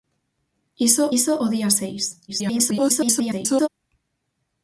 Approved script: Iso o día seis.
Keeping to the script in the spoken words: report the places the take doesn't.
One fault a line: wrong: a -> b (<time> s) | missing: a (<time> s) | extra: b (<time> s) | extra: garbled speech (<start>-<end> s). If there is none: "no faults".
extra: iso (1.2 s)
extra: garbled speech (2.3-3.7 s)